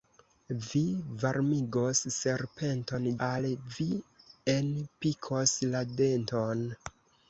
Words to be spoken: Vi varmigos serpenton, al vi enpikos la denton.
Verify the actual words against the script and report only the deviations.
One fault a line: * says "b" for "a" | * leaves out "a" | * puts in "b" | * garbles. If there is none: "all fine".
all fine